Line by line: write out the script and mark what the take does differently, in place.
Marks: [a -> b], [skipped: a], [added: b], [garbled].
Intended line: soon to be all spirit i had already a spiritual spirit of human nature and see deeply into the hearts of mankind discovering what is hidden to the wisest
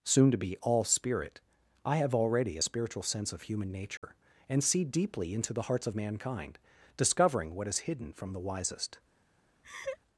soon to be all spirit i [had -> have] already a spiritual [spirit -> sense] of human nature and see deeply into the hearts of mankind discovering what is hidden [to -> from] the wisest